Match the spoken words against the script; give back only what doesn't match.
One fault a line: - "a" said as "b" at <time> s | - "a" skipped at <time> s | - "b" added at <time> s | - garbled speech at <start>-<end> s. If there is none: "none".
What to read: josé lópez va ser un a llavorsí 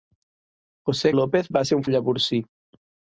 none